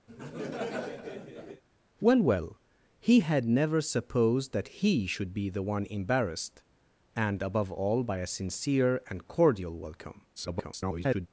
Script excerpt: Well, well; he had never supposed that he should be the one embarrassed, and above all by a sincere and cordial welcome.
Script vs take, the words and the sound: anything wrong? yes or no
yes